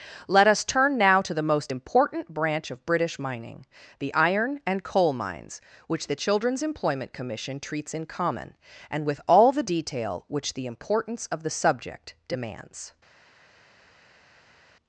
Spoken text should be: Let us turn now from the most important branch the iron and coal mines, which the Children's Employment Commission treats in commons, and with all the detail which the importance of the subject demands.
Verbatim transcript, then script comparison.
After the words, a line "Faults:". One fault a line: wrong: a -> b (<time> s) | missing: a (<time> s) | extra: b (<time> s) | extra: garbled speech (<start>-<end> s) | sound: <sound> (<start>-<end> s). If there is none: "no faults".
Let us turn now to the most important branch of British mining, the iron and coal mines, which the Children's Employment Commission treats in common, and with all the detail which the importance of the subject demands.
Faults:
wrong: from -> to (1.2 s)
extra: of British mining (2.7 s)
wrong: commons -> common (8.1 s)